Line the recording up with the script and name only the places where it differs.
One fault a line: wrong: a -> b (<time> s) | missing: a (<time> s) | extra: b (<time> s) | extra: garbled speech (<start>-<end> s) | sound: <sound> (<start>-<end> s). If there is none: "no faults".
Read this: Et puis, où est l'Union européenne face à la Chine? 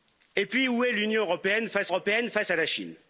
extra: européenne face (1.9 s)